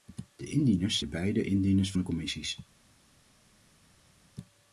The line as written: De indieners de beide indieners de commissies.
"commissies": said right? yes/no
yes